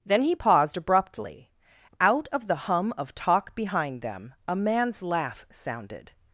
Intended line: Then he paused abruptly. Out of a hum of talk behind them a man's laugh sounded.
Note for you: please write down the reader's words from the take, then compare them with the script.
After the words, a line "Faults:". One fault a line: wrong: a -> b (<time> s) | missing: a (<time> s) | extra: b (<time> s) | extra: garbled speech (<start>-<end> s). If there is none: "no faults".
Then he paused abruptly. Out of the hum of talk behind them a man's laugh sounded.
Faults:
wrong: a -> the (2.5 s)